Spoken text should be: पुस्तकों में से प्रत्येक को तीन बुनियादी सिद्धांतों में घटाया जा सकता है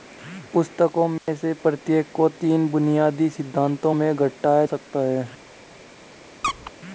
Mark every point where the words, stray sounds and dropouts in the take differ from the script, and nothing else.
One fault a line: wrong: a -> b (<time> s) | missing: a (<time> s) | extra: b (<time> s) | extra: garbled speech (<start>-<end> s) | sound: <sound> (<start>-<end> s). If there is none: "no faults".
sound: dropout (1.2-1.3 s)
missing: जा (4.6 s)
sound: squeak (6.4-6.7 s)